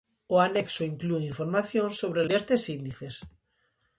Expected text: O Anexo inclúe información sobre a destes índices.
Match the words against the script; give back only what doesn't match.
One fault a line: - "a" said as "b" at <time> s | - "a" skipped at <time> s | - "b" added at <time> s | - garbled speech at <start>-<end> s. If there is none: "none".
none